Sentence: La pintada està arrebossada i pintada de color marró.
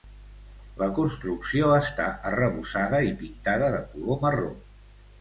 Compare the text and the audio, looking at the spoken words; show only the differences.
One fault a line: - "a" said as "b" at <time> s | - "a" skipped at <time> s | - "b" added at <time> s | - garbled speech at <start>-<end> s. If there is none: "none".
- "pintada" said as "construcció" at 1.0 s